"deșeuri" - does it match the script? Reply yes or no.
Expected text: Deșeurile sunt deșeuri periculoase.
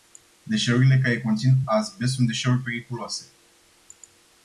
yes